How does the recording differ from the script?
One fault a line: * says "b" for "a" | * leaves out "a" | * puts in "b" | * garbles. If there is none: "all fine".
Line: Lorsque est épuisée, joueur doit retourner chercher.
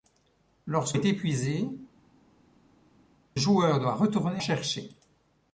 all fine